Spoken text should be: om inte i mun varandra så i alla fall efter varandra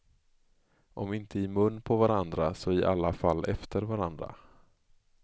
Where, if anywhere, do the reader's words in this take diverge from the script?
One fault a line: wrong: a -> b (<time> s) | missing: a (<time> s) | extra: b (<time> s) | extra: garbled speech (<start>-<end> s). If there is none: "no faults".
extra: på (1.8 s)